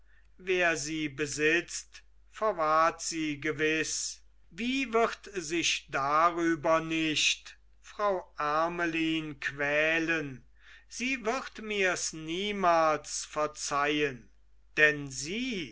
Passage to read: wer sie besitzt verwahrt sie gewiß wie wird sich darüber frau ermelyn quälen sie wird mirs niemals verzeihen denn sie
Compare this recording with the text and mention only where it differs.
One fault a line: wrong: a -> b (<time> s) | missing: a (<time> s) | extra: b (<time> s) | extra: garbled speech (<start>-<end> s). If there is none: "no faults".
extra: nicht (6.8 s)